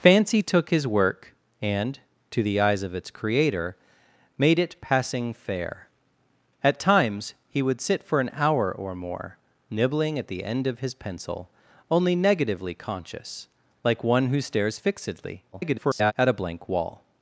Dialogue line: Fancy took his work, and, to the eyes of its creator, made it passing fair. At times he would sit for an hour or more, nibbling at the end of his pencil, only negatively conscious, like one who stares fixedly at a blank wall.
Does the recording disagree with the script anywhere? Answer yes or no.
yes